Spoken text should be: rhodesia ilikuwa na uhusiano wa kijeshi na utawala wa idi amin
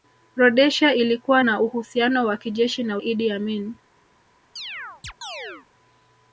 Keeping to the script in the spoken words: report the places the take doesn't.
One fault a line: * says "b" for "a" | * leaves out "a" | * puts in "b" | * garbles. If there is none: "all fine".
* leaves out "utawala wa"